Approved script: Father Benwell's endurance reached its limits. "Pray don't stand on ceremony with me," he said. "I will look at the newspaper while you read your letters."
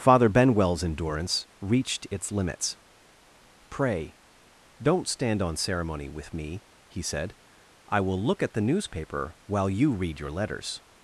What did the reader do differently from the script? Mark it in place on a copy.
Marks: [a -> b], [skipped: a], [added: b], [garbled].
Father Benwell's endurance reached its limits. "Pray don't stand on ceremony with me," he said. "I will look at the newspaper while you read your letters."